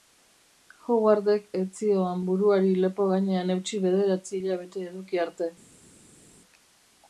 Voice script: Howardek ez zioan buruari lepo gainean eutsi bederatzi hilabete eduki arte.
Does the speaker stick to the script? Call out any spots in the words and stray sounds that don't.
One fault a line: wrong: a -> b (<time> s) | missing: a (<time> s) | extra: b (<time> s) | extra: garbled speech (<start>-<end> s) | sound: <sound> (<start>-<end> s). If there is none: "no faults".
no faults